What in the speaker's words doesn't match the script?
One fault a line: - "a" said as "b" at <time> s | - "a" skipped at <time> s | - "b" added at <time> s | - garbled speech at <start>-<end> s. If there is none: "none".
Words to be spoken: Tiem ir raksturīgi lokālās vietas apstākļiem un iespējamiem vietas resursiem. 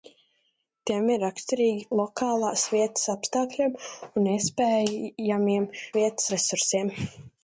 none